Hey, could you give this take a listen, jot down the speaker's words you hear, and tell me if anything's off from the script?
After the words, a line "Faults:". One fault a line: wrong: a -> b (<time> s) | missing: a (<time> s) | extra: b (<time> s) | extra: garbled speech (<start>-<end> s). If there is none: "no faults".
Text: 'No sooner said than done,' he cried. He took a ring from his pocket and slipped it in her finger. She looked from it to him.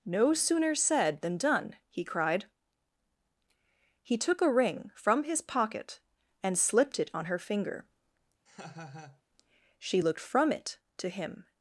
'No sooner said than done,' he cried. He took a ring from his pocket and slipped it on her finger. She looked from it to him.
Faults:
wrong: in -> on (7.1 s)